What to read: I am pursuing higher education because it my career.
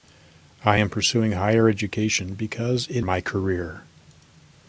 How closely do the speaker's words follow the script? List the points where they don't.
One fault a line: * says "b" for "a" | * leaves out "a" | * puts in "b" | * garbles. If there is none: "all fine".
all fine